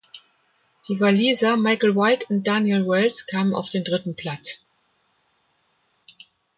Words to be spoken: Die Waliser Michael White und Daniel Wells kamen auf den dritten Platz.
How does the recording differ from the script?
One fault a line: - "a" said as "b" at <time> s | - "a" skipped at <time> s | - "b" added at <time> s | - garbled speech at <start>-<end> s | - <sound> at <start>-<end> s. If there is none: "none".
none